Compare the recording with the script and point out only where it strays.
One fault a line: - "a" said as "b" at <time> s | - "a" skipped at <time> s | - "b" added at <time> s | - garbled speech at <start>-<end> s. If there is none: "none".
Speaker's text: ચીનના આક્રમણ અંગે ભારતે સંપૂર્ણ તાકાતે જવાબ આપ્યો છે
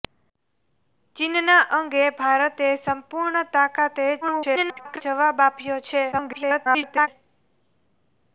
- "આક્રમણ" skipped at 1.6 s
- garbled speech at 4.2-5.0 s
- garbled speech at 6.1-7.1 s